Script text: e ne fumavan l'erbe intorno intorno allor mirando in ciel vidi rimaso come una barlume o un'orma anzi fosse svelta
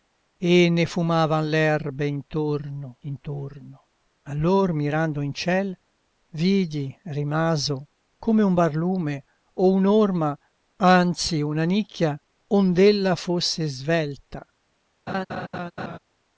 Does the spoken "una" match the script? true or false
false